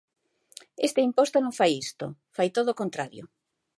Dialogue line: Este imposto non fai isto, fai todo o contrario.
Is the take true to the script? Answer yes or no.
yes